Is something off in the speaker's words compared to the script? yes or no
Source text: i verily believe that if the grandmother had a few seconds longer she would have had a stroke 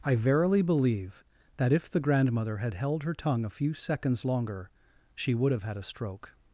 yes